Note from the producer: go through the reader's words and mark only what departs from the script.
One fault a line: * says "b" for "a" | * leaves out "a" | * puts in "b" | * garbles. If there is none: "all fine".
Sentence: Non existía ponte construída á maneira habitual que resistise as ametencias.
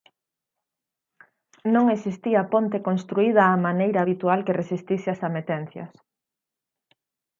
all fine